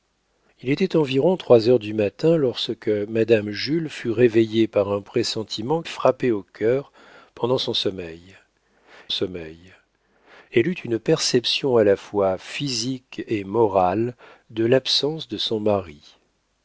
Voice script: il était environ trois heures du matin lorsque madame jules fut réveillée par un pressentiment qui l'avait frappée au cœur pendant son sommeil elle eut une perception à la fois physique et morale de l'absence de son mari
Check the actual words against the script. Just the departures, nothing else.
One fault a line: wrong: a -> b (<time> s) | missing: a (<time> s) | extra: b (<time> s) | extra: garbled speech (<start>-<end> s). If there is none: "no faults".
missing: qui l'avait (5.8 s)
extra: sommeil (9.1 s)